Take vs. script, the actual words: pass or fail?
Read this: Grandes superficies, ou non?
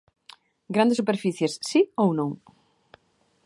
fail